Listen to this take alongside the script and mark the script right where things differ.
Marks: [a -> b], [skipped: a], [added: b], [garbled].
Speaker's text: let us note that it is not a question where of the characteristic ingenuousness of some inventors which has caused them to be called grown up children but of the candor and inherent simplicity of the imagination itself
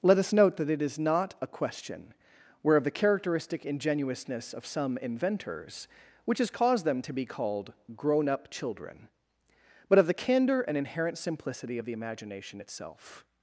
let us note that it is not a question where of the characteristic ingenuousness of some inventors which has caused them to be called grown up children but of the candor and inherent simplicity of the imagination itself